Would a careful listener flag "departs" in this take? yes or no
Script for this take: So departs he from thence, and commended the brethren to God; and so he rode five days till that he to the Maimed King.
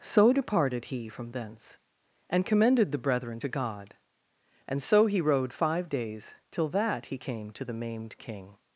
yes